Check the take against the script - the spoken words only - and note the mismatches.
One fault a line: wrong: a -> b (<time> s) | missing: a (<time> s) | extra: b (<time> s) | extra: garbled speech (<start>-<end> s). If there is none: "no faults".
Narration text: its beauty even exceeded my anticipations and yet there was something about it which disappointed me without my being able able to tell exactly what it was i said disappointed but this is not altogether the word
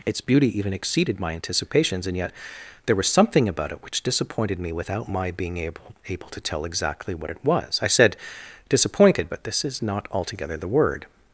no faults